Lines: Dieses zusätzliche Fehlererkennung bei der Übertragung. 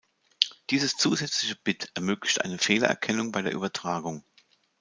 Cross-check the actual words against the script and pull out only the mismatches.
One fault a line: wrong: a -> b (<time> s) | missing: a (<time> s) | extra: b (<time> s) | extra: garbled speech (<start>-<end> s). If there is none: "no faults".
extra: Bit ermöglicht eine (1.6 s)